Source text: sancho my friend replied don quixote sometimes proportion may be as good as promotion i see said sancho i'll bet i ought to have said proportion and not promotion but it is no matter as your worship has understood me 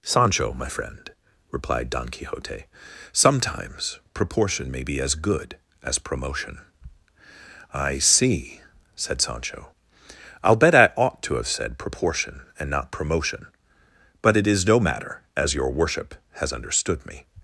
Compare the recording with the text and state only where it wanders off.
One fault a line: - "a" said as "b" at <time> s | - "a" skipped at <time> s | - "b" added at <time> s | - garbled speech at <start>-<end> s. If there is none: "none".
none